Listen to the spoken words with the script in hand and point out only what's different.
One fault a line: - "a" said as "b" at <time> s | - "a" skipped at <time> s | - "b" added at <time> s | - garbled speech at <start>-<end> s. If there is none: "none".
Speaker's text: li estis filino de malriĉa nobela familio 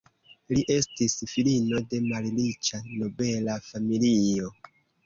none